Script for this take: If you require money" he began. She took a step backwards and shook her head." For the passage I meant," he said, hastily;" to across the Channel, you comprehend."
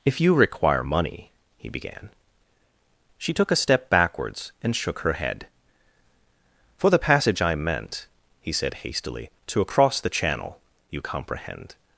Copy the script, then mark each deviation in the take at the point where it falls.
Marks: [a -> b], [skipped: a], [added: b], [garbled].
If you require money" he began. She took a step backwards and shook her head." For the passage I meant," he said, hastily;" to across the Channel, you comprehend."